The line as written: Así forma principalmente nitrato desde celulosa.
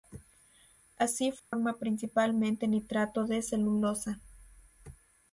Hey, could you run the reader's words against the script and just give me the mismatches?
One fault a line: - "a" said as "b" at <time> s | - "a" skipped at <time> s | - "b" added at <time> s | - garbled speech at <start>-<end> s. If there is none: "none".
- "desde" said as "de" at 3.3 s